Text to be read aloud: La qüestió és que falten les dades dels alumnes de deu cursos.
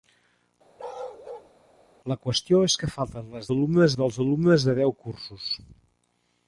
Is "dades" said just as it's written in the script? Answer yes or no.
no